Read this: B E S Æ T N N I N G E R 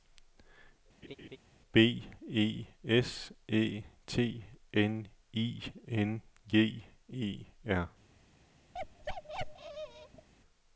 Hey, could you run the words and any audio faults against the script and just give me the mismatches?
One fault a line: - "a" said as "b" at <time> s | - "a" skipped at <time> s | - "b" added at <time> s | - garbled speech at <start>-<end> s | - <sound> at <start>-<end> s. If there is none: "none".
- laugh at 1.0-1.4 s
- "N" skipped at 5.1 s
- bark at 8.7-10.3 s